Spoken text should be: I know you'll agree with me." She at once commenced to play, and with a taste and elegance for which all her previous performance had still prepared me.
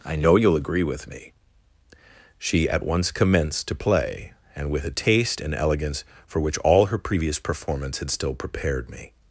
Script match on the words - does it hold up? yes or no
yes